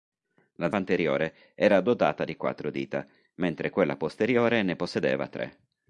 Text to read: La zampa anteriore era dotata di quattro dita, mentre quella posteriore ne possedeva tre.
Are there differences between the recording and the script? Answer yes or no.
yes